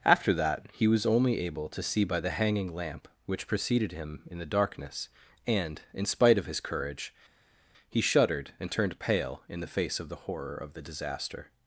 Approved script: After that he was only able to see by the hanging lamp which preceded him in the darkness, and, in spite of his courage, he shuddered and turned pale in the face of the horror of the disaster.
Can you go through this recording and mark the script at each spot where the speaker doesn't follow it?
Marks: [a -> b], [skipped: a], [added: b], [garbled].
After that he was only able to see by the hanging lamp which preceded him in the darkness, and, in spite of his courage, he shuddered and turned pale in the face of the horror of the disaster.